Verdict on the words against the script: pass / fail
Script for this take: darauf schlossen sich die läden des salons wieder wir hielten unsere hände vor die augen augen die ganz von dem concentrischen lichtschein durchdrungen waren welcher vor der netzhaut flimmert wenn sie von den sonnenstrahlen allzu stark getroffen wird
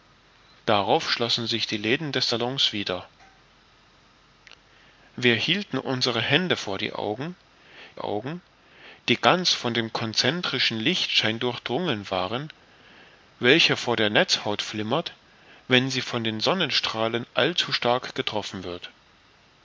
pass